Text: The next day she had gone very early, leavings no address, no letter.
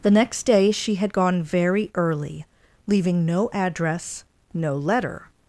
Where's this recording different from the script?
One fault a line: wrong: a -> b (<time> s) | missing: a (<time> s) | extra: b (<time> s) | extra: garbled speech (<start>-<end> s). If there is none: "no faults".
wrong: leavings -> leaving (2.9 s)